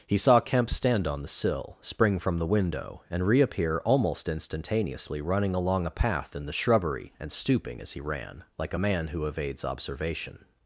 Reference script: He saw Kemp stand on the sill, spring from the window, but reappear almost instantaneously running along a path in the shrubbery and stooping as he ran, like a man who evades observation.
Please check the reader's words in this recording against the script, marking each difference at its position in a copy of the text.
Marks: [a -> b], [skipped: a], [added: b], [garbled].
He saw Kemp stand on the sill, spring from the window, [but -> and] reappear almost instantaneously running along a path in the shrubbery and stooping as he ran, like a man who evades observation.